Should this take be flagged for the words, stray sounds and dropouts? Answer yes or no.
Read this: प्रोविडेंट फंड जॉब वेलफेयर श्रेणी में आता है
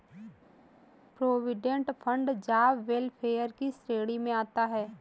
yes